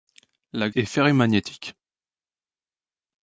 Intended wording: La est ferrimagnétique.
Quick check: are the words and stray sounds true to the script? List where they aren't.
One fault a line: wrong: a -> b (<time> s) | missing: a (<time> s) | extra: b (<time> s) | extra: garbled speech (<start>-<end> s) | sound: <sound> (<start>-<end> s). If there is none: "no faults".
no faults